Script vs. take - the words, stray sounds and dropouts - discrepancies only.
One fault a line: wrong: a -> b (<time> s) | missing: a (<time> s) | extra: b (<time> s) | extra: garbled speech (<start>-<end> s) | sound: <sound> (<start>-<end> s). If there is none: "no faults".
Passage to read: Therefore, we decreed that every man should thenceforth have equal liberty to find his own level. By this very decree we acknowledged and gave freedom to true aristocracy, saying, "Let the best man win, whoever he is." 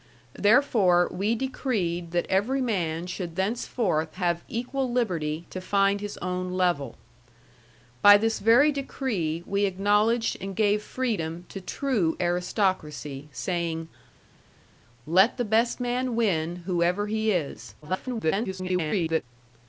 extra: garbled speech (17.8-19.2 s)